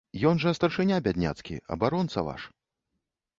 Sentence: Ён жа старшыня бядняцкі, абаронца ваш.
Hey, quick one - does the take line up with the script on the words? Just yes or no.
yes